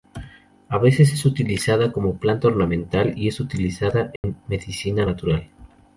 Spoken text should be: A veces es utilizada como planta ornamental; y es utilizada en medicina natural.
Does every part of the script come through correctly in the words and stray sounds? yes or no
no